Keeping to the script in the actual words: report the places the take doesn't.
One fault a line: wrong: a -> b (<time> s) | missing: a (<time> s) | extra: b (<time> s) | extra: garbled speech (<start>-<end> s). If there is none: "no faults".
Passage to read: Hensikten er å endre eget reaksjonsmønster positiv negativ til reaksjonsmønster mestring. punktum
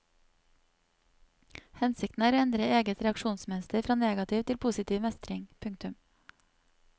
wrong: positiv -> fra (3.9 s)
wrong: reaksjonsmønster -> positiv (4.7 s)